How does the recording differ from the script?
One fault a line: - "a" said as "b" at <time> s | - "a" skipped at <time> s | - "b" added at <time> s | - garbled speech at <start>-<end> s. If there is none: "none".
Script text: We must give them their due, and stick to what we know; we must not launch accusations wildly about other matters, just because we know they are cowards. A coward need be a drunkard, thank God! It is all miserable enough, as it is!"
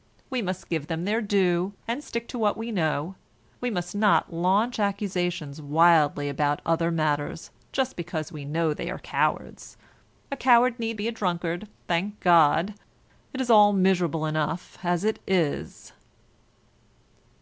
none